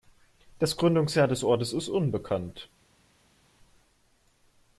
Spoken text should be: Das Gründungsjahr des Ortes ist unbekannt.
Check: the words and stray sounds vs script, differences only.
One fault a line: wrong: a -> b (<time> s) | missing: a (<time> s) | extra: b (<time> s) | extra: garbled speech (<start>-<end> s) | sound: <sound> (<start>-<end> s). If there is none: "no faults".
no faults